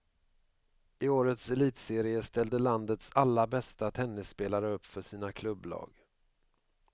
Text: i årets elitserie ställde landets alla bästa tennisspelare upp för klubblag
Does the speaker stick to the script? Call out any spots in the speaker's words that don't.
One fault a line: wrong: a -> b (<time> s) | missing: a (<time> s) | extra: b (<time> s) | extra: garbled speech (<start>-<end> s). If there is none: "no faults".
extra: sina (5.0 s)